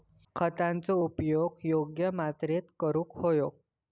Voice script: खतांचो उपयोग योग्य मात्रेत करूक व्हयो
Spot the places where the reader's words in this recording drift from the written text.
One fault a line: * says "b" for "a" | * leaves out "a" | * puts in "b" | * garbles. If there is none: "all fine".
all fine